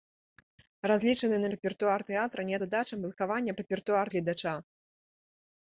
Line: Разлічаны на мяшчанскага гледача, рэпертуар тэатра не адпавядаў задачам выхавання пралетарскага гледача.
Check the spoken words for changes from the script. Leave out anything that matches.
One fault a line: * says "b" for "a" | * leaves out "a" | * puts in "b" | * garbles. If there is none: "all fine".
* leaves out "мяшчанскага гледача"
* leaves out "адпавядаў"
* says "рэпертуар" for "пралетарскага"